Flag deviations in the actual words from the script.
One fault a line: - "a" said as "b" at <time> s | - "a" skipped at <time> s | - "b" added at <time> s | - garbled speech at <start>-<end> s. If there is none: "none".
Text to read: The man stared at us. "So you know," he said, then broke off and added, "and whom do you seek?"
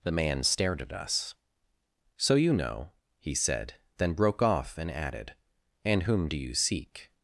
none